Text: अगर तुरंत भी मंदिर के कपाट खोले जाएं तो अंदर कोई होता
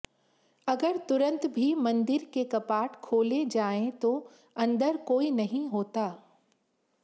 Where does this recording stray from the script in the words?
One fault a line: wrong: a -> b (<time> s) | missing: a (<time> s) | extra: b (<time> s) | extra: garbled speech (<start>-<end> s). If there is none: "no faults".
extra: नहीं (5.3 s)